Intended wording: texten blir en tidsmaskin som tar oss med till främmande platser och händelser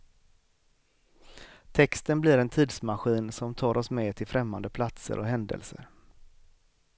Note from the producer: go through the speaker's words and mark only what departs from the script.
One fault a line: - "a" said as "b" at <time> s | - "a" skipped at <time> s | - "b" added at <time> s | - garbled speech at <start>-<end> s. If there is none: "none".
none